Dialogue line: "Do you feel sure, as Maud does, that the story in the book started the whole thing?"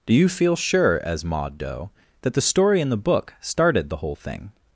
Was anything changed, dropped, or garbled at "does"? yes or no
yes